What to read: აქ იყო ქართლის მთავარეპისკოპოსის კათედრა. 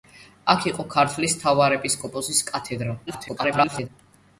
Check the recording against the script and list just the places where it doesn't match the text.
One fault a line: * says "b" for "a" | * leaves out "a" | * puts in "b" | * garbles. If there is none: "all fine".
* garbles